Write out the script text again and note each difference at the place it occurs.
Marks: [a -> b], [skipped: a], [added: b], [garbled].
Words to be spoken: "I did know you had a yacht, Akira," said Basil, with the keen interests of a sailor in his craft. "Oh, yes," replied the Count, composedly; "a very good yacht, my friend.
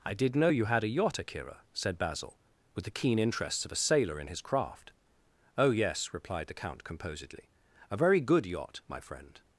"I did know you had a yacht, Akira," said Basil, with the keen interests of a sailor in his craft. "Oh, yes," replied the Count, composedly; "a very good yacht, my friend.